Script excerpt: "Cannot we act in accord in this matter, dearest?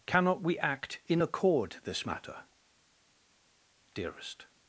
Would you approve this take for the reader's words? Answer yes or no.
no